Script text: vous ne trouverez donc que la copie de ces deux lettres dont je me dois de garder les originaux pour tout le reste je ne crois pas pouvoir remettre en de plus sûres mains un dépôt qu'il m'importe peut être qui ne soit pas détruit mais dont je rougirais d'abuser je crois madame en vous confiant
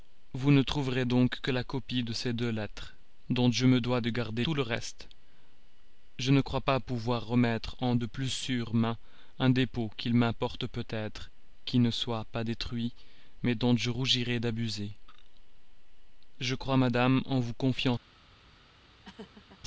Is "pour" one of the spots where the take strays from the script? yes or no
yes